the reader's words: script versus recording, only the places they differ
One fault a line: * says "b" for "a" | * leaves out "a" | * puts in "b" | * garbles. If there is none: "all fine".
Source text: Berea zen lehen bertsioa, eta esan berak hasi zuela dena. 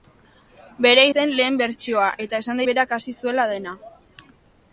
all fine